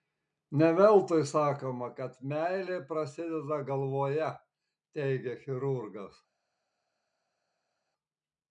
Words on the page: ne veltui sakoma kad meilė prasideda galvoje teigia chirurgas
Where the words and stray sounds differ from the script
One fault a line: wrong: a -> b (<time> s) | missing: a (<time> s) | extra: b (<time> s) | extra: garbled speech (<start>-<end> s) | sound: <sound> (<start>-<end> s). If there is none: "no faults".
no faults